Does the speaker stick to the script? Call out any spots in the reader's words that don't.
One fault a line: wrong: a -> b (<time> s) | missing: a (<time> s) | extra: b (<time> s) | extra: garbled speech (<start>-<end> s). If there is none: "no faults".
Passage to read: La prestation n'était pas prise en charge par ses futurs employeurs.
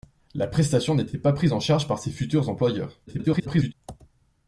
extra: garbled speech (3.1-3.7 s)